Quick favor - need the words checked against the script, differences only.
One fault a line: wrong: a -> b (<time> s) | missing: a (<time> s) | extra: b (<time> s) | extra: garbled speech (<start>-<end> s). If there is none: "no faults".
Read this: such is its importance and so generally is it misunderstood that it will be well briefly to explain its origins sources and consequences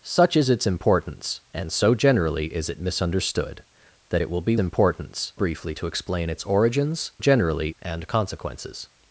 wrong: well -> importance (4.6 s)
wrong: sources -> generally (7.2 s)